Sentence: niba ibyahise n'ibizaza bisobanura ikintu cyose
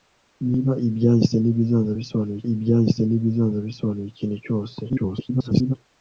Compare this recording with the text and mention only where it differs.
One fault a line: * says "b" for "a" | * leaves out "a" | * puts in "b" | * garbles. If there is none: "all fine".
* puts in "ibyahise n'ibizaza bisobanura"
* garbles